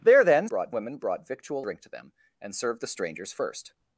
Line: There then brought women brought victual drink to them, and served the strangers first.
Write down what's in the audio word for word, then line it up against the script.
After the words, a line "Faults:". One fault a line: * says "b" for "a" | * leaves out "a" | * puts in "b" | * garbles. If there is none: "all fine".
There then brought women brought victual drink to them, and served the strangers first.
Faults:
all fine